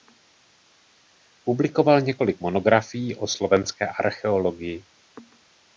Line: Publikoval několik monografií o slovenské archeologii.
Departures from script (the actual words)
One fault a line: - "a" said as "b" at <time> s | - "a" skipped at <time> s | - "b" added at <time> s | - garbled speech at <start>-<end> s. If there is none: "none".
none